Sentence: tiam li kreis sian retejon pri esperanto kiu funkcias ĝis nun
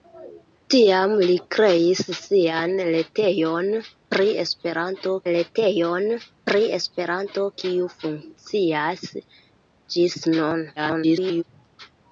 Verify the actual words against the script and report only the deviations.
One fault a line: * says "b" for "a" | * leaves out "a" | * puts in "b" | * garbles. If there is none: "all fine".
* puts in "retejon pri esperanto"
* garbles